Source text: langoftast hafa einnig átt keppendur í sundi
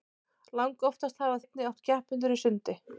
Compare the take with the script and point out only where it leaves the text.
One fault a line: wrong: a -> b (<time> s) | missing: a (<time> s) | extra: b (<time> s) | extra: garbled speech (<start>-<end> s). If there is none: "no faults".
no faults